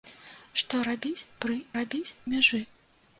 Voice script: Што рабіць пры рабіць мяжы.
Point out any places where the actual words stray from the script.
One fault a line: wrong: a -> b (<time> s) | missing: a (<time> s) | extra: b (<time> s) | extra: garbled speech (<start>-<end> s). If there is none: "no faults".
no faults